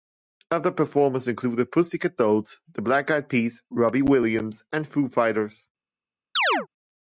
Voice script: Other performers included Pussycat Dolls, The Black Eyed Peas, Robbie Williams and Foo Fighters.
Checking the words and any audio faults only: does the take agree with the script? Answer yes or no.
no